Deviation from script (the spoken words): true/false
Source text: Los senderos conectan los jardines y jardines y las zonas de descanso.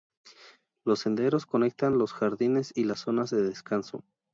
true